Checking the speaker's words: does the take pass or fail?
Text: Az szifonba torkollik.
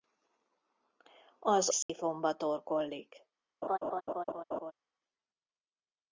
pass